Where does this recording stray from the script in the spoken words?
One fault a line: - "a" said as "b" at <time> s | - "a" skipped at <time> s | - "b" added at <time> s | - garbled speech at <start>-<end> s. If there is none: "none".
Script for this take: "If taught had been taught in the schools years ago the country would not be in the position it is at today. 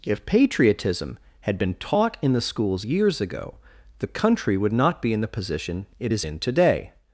- "taught" said as "patriotism" at 0.2 s
- "at" said as "in" at 6.2 s